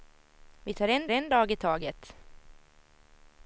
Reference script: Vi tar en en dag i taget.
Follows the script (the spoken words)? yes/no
yes